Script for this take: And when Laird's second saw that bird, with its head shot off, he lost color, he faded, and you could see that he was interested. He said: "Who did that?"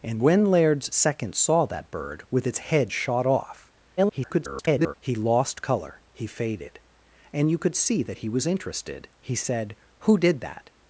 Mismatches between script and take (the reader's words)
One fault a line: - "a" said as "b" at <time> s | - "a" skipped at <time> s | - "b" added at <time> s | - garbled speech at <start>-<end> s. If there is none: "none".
- garbled speech at 4.0-4.9 s